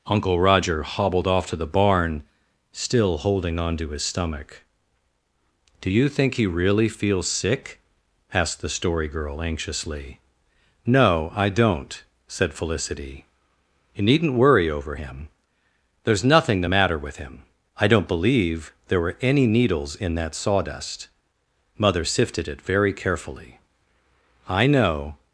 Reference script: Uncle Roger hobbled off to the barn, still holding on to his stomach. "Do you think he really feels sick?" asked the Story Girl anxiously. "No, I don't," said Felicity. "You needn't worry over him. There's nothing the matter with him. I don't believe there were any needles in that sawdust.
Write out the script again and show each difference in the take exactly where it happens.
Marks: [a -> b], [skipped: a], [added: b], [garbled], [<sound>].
Uncle Roger hobbled off to the barn, still holding on to his stomach. "Do you think he really feels sick?" asked the Story Girl anxiously. "No, I don't," said Felicity. "You needn't worry over him. There's nothing the matter with him. I don't believe there were any needles in that sawdust. [added: Mother sifted it very carefully I know]